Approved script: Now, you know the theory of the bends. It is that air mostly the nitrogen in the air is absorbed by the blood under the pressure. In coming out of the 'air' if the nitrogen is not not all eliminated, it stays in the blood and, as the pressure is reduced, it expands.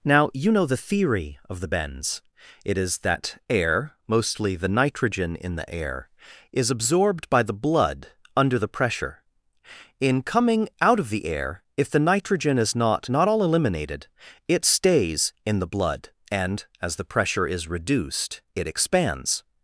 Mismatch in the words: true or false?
false